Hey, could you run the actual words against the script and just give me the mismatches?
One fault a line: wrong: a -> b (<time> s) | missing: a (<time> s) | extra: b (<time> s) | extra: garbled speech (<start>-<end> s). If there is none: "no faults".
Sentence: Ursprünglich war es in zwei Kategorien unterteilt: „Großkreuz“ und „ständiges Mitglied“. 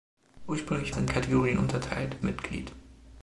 missing: war (0.9 s)
missing: zwei (1.1 s)
missing: Großkreuz und ständiges (2.2 s)